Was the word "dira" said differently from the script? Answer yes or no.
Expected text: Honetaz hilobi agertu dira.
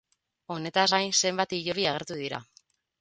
no